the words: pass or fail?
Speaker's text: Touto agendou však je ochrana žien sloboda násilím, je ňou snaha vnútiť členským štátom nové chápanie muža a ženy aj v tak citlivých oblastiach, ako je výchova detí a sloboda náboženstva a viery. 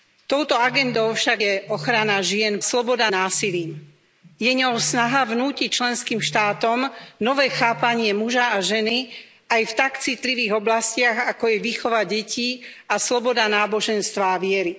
pass